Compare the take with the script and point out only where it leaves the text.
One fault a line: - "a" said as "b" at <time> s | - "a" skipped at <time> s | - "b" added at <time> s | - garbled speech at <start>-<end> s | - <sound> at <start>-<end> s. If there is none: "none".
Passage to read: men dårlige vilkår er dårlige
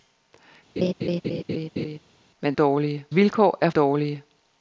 - laugh at 0.8-2.0 s